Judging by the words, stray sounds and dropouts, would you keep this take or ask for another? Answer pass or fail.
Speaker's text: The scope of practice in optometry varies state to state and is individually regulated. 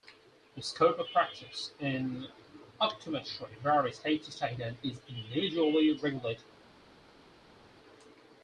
pass